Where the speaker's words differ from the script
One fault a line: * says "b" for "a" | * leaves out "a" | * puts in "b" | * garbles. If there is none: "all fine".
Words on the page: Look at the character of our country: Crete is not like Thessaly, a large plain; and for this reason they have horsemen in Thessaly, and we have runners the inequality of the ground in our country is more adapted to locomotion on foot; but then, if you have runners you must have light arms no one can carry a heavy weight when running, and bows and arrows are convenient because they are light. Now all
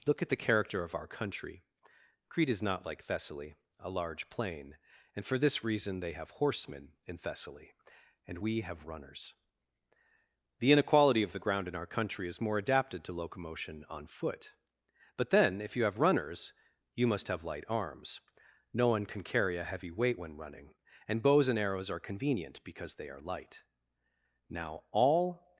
all fine